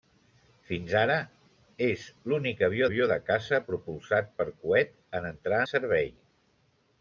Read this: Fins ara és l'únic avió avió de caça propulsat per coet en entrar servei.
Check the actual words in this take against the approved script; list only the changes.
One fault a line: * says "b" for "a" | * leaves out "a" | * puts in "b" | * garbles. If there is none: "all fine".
all fine